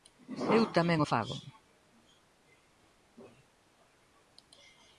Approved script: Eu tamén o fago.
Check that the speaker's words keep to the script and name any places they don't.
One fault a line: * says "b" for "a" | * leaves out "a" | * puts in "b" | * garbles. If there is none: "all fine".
all fine